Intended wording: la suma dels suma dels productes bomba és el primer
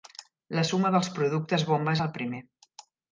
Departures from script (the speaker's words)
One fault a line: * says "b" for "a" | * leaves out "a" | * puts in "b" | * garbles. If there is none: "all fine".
* leaves out "suma dels"